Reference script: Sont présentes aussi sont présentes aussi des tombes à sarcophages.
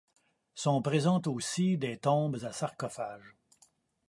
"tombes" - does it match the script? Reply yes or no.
yes